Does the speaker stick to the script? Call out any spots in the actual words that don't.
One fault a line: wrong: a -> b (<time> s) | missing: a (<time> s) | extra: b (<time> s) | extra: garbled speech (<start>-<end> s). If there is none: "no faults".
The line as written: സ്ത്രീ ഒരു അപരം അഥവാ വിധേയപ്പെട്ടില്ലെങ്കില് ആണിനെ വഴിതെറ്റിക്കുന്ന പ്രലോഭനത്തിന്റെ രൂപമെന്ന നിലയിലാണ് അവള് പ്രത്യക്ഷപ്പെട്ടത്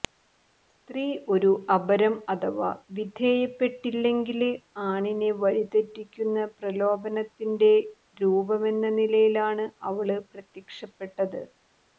no faults